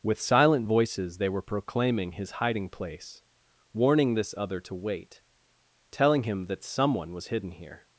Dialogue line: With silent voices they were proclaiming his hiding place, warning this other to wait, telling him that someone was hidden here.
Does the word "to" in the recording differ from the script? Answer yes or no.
no